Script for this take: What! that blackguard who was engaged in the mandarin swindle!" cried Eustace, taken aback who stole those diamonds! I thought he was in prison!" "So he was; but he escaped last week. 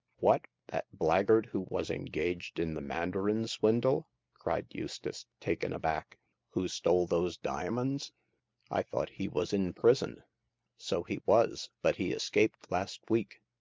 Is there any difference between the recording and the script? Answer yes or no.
no